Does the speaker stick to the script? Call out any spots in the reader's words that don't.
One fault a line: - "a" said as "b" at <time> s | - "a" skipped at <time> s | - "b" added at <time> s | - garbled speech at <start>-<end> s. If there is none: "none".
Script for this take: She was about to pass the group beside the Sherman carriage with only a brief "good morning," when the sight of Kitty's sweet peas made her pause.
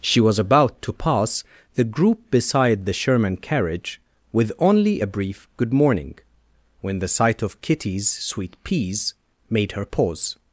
none